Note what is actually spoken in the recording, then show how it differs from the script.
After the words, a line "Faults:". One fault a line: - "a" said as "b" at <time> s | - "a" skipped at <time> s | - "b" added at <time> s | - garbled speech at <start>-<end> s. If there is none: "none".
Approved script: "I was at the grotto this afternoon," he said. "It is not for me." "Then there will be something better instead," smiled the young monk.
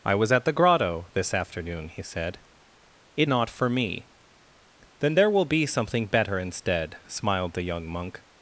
"I was at the grotto this afternoon," he said. "It not for me." "Then there will be something better instead," smiled the young monk.
Faults:
- "is" skipped at 3.3 s